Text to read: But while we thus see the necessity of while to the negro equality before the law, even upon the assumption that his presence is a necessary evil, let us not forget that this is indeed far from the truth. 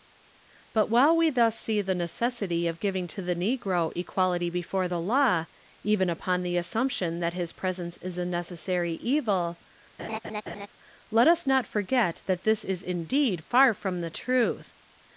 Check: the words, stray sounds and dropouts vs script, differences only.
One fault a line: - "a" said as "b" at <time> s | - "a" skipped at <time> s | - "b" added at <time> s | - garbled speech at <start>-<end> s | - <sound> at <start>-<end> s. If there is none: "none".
- "while" said as "giving" at 2.8 s
- laugh at 10.0-10.7 s